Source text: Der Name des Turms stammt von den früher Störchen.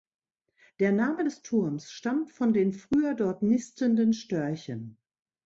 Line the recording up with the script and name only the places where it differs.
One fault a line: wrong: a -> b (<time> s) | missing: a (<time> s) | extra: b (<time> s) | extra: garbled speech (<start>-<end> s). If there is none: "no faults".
extra: dort nistenden (3.1 s)